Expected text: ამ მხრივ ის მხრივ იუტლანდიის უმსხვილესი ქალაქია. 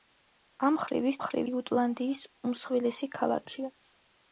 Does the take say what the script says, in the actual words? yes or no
yes